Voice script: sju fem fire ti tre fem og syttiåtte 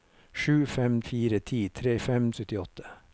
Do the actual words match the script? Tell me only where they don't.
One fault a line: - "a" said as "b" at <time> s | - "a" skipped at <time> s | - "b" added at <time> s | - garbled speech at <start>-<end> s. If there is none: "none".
none